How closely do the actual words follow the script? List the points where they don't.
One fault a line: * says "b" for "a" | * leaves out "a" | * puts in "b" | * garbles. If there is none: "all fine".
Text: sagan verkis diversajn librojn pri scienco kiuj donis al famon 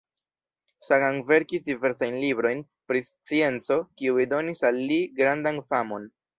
* puts in "li grandan"